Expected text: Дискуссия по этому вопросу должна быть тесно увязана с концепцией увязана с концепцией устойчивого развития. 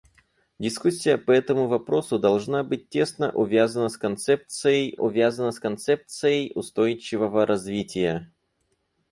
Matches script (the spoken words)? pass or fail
pass